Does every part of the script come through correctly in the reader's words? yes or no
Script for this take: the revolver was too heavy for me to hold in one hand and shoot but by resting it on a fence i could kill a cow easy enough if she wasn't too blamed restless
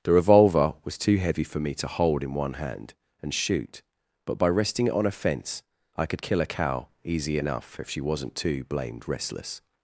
yes